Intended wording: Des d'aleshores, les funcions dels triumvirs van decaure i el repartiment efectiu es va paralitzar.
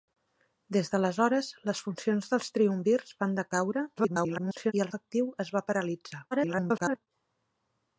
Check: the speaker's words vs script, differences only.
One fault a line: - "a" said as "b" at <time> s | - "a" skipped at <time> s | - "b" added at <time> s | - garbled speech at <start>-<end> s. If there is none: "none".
- garbled speech at 4.0-4.7 s
- "repartiment" skipped at 4.9 s
- garbled speech at 6.3-7.1 s